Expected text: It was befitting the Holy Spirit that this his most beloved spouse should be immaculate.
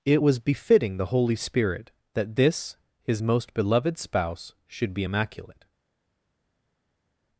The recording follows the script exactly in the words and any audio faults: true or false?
true